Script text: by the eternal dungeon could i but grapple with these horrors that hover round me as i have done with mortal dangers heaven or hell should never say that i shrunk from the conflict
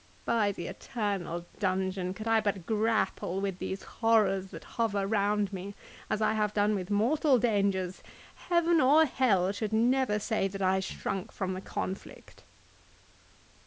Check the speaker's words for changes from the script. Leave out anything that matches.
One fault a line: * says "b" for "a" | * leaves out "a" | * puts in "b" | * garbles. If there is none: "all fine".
all fine